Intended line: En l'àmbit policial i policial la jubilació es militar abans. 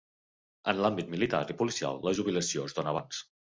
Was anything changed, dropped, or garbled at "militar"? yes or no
yes